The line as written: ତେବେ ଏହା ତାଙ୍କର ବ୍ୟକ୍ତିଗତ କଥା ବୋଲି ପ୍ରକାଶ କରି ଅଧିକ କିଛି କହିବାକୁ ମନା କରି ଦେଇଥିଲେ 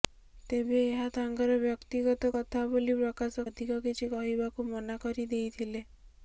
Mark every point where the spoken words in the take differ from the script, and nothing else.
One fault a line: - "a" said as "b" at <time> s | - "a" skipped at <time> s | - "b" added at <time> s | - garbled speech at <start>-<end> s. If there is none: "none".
- "କରି" skipped at 3.5 s